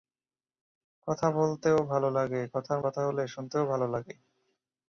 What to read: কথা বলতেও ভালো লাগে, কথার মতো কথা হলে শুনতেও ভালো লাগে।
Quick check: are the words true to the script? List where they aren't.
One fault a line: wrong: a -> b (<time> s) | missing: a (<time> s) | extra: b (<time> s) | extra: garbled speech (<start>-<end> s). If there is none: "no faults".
missing: মতো (2.8 s)